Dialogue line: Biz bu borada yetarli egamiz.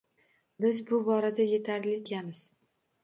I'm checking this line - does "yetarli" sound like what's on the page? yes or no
yes